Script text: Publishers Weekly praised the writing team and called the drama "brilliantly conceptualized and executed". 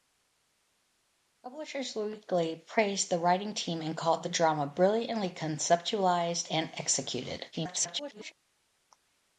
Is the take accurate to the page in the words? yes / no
no